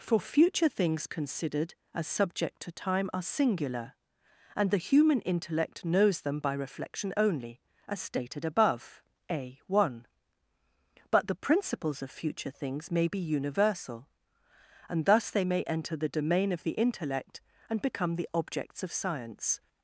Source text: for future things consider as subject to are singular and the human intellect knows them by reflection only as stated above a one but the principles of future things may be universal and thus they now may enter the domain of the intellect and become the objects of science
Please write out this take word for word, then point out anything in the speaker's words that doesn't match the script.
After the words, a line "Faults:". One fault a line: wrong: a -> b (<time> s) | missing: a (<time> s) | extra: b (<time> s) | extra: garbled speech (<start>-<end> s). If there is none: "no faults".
for future things considered as subject to time are singular and the human intellect knows them by reflection only as stated above a one but the principles of future things may be universal and thus they may enter the domain of the intellect and become the objects of science
Faults:
wrong: consider -> considered (1.1 s)
extra: time (2.7 s)
missing: now (15.4 s)